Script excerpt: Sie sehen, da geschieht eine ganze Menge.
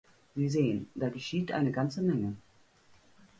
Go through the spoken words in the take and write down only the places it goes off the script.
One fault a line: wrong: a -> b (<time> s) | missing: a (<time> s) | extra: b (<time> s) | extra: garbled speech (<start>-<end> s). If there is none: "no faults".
no faults